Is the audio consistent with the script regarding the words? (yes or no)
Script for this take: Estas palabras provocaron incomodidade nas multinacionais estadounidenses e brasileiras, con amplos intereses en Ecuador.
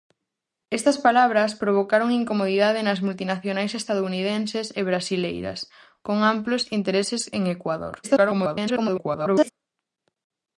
no